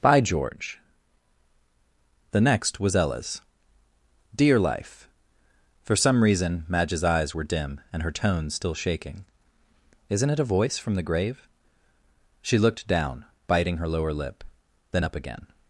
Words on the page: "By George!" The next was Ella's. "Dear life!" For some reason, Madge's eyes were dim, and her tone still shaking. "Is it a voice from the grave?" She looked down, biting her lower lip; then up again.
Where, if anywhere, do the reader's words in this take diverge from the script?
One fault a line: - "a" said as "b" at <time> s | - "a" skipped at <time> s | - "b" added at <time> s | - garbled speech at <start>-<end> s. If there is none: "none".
- "Is" said as "Isn't" at 10.1 s